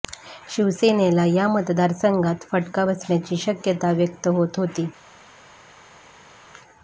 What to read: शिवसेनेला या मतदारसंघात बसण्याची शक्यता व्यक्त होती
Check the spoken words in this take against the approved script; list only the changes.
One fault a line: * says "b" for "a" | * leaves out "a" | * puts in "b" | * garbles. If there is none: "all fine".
* puts in "फटका"
* puts in "होत"